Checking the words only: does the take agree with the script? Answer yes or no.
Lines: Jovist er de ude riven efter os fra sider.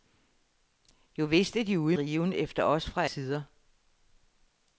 yes